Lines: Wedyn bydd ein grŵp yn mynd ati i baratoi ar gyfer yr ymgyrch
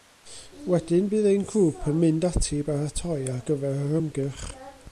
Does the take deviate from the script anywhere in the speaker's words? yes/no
no